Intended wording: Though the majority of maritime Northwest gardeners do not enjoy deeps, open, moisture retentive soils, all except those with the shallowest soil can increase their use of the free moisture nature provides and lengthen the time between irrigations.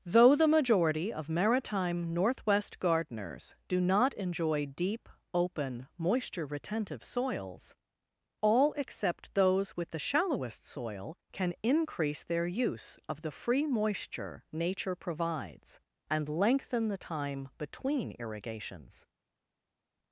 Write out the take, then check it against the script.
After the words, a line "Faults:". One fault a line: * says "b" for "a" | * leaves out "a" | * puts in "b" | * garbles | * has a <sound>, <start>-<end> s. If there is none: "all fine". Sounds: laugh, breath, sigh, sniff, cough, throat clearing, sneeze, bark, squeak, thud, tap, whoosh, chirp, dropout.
Though the majority of maritime Northwest gardeners do not enjoy deep, open, moisture retentive soils, all except those with the shallowest soil can increase their use of the free moisture nature provides and lengthen the time between irrigations.
Faults:
* says "deep" for "deeps"